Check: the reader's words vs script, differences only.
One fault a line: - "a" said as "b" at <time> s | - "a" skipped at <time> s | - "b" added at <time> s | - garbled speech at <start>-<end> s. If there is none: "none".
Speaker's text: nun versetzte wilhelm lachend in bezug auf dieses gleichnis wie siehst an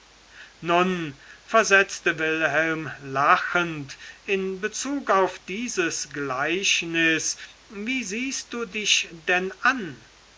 - "du dich denn" added at 8.5 s